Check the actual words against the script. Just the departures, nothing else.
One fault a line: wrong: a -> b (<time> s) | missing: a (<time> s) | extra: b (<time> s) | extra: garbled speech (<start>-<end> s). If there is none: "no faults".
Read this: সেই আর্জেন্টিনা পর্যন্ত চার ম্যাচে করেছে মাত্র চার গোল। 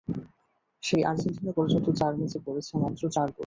no faults